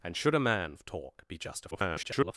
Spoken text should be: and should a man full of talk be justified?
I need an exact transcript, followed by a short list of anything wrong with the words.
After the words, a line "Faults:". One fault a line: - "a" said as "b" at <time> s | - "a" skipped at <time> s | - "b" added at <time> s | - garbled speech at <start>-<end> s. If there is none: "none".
and should a man of talk be justified? [garbled]
Faults:
- "full" skipped at 0.8 s
- garbled speech at 1.7-2.3 s